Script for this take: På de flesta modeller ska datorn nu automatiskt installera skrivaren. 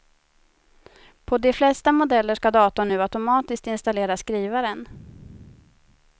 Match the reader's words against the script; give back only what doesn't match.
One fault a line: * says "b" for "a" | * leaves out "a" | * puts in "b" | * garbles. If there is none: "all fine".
all fine